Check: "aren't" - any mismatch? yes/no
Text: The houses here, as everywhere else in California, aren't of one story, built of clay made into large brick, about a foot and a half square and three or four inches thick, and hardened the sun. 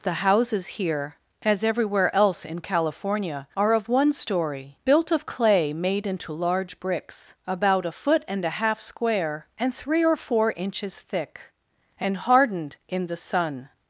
yes